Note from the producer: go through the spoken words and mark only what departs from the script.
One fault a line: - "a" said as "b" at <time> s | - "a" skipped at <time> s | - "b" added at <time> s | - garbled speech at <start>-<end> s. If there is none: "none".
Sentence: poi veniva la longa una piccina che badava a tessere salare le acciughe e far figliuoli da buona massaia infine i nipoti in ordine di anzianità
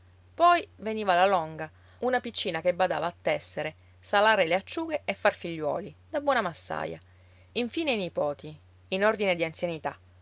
none